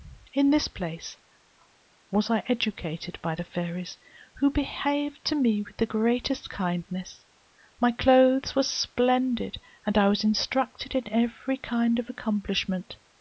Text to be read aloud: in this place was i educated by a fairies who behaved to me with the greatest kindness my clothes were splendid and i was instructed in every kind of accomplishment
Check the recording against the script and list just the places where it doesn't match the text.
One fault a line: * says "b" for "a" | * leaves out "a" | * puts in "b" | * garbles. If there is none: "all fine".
* says "the" for "a"